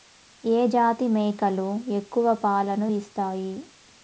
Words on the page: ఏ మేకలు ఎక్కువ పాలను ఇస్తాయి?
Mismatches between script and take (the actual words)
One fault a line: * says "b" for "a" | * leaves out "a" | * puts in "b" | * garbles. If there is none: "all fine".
* puts in "జాతి"